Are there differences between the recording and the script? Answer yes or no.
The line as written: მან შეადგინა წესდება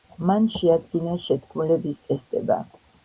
yes